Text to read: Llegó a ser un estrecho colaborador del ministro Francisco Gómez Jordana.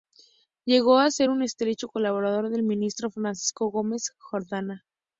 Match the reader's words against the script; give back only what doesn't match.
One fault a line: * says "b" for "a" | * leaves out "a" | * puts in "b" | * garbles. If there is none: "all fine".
all fine